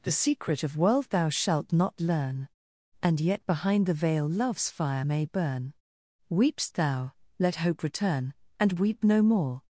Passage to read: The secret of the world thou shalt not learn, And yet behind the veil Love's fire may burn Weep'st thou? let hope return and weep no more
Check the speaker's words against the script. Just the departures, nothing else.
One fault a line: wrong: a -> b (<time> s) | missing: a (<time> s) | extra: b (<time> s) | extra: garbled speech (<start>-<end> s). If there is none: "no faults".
missing: the (0.8 s)